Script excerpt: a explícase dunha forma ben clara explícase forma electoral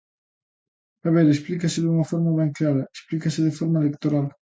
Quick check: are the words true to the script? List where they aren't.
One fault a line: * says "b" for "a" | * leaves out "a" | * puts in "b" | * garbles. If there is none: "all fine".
* puts in "ver"
* puts in "de"